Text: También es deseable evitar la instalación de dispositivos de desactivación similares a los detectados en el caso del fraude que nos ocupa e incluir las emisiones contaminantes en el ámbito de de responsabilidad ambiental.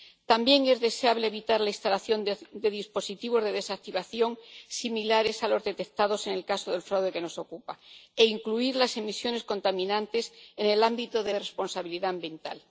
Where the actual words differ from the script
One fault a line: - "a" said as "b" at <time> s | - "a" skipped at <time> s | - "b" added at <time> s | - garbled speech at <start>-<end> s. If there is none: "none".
none